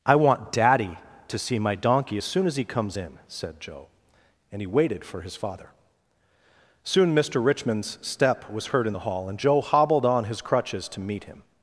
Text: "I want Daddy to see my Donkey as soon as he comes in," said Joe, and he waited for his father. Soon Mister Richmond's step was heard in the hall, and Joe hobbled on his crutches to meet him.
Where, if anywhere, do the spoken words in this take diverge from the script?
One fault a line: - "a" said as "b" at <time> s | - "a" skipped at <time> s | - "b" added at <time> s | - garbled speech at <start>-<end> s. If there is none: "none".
none